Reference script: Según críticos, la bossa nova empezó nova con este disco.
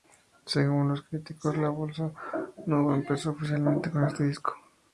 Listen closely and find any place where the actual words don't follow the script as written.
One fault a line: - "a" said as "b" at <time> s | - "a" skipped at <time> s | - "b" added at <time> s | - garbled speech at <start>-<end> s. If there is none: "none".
- "los" added at 0.9 s
- "nova" said as "oficialmente" at 3.3 s